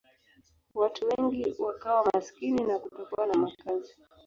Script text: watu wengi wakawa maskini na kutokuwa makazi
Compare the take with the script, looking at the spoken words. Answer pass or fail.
fail